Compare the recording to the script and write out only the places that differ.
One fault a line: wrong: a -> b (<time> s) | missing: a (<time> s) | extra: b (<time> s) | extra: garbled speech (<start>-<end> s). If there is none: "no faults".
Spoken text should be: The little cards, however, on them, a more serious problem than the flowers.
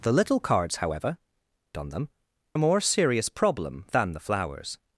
no faults